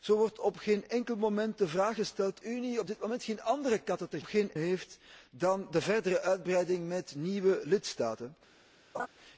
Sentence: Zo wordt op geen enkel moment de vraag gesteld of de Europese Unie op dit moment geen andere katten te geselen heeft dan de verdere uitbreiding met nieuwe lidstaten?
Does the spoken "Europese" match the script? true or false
false